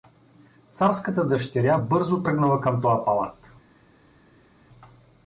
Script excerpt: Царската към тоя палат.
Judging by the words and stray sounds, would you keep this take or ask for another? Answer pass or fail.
fail